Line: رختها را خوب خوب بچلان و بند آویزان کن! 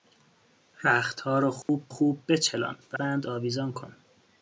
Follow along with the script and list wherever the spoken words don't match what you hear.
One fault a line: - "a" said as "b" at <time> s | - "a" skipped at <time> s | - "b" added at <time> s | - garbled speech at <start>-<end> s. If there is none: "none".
none